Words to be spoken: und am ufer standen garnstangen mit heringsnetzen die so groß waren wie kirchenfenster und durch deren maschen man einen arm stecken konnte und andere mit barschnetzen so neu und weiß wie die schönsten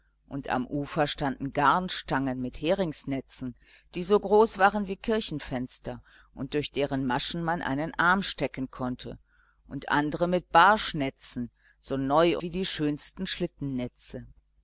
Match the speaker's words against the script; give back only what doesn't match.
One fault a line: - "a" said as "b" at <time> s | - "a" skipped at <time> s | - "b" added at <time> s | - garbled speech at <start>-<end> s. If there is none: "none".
- "und weiß" skipped at 12.4 s